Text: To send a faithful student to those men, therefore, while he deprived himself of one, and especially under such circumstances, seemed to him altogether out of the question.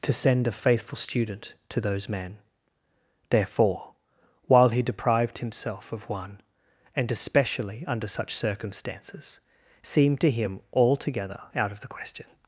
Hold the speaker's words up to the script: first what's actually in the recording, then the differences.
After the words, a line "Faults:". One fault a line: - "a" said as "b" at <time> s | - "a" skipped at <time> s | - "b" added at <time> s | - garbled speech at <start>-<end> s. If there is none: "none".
To send a faithful student to those men, therefore, while he deprived himself of one, and especially under such circumstances, seemed to him altogether out of the question.
Faults:
none